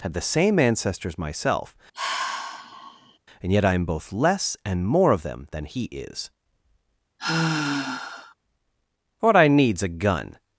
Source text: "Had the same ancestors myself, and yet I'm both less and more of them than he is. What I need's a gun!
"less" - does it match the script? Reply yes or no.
yes